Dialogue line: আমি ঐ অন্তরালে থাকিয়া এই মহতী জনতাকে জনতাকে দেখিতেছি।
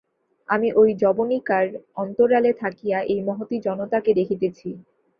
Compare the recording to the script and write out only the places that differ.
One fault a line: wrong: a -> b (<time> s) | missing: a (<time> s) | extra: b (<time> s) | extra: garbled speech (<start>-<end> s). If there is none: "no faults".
extra: যবনিকার (1.0 s)
missing: জনতাকে (4.1 s)